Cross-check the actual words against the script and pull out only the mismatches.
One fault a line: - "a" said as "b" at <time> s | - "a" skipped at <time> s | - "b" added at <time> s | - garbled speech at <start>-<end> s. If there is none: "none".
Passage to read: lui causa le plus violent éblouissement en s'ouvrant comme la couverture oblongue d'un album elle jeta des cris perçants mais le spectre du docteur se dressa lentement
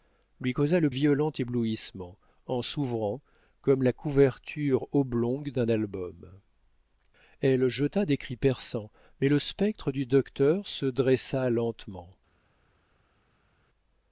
- "plus" skipped at 0.9 s